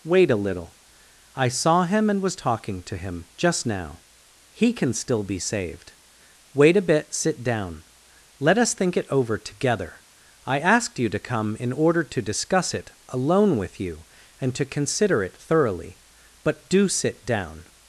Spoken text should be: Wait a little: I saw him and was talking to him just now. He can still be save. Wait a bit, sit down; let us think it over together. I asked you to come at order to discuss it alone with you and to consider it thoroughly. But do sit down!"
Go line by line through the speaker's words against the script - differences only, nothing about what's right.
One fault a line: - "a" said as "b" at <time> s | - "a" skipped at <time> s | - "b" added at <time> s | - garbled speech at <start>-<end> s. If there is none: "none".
- "save" said as "saved" at 5.4 s
- "at" said as "in" at 11.6 s